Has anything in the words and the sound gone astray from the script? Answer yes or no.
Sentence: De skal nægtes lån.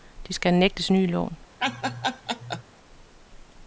yes